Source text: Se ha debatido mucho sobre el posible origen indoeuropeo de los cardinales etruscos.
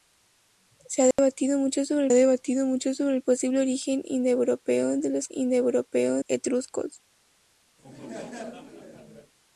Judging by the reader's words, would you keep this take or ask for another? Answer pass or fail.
fail